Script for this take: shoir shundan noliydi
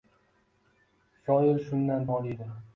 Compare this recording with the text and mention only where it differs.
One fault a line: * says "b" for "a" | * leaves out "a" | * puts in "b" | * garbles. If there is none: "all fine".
all fine